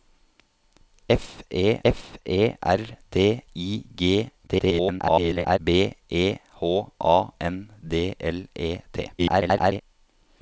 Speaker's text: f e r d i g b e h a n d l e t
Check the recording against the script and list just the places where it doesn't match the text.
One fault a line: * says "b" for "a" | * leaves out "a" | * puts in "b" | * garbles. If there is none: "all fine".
* puts in "f e"
* garbles
* garbles